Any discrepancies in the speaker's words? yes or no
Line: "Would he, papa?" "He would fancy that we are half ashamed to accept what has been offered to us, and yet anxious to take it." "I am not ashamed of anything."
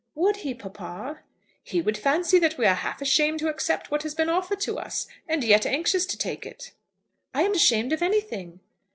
yes